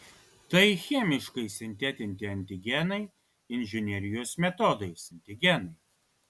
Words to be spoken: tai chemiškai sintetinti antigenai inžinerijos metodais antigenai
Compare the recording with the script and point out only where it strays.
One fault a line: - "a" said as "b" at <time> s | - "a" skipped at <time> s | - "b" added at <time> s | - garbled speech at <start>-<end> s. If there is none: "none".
none